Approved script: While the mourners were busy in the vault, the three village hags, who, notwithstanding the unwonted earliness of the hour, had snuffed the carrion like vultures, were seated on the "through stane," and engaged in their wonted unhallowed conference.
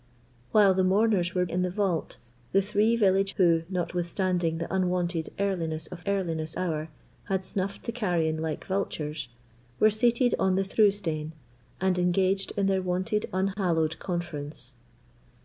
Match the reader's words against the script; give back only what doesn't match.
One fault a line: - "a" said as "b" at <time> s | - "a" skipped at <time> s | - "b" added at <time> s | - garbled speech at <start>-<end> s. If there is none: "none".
- "busy" skipped at 1.4 s
- "hags" skipped at 3.3 s
- "the" said as "earliness" at 6.1 s